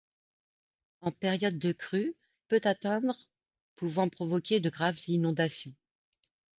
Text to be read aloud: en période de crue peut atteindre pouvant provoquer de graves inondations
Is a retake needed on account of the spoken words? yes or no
no